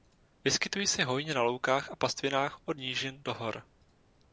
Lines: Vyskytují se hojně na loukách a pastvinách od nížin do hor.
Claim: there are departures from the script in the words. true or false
false